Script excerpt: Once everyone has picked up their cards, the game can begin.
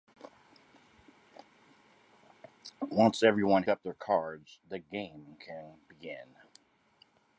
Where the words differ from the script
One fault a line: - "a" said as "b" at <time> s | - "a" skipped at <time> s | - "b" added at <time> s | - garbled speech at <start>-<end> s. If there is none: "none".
- "has picked" skipped at 3.6 s